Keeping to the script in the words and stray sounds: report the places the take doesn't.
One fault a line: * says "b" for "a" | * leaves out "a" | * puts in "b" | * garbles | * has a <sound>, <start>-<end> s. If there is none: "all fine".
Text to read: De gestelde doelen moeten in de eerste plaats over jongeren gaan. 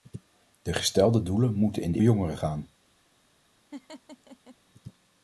* leaves out "eerste plaats over"
* has a laugh, 3.7-4.6 s